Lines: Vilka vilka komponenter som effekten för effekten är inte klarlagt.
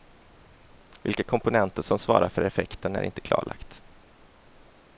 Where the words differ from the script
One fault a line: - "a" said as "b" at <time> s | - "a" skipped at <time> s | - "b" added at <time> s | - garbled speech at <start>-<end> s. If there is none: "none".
- "vilka" skipped at 1.2 s
- "effekten" said as "svarar" at 2.0 s